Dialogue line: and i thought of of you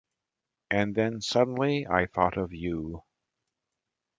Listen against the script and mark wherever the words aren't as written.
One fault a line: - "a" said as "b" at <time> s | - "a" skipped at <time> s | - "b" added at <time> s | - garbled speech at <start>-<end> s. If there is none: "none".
- "then suddenly" added at 0.9 s
- "of" skipped at 2.5 s